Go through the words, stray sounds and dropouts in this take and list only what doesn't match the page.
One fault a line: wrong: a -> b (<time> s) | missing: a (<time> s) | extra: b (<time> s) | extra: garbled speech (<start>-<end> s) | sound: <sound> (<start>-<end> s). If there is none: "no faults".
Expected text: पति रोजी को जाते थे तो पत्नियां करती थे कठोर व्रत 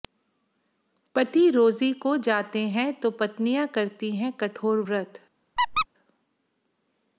wrong: थे -> हैं (2.7 s)
wrong: थे -> हैं (4.2 s)
sound: squeak (5.6-5.9 s)